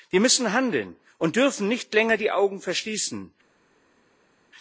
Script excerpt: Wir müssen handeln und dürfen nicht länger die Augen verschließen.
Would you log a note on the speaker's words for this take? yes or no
no